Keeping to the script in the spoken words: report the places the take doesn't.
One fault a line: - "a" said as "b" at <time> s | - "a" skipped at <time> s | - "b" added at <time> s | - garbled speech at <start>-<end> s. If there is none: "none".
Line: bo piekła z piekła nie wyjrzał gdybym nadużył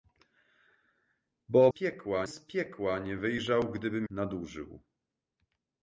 none